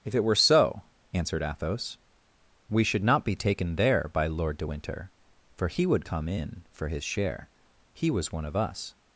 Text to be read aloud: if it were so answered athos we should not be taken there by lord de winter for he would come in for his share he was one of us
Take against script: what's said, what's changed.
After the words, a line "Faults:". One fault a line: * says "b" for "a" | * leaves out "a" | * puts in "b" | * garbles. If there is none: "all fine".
if it were so answered athos we should not be taken there by lord de winter for he would come in for his share he was one of us
Faults:
all fine